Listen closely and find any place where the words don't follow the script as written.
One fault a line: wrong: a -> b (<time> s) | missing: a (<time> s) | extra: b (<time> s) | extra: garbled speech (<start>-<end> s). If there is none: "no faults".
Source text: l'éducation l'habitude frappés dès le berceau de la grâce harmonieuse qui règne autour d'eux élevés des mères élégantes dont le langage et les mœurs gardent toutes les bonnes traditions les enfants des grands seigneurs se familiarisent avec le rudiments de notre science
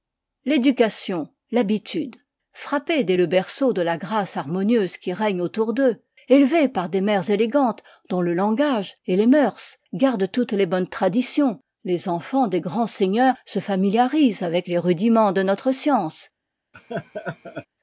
extra: par (6.7 s)
wrong: le -> les (14.7 s)